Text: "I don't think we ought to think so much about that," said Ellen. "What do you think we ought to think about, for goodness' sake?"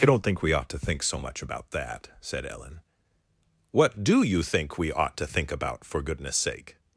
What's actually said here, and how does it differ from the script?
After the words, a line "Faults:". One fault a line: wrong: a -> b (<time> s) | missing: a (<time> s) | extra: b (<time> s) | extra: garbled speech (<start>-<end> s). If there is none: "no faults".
"I don't think we ought to think so much about that," said Ellen. "What do you think we ought to think about, for goodness' sake?"
Faults:
no faults